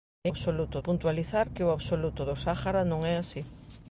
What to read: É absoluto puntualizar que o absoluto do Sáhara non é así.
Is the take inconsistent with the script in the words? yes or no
no